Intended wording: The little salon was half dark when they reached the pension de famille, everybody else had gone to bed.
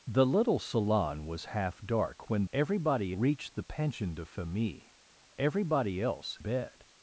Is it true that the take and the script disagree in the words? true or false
true